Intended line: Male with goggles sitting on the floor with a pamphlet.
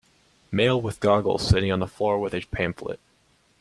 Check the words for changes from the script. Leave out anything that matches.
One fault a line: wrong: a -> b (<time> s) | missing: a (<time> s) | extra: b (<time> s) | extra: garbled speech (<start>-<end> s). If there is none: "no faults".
no faults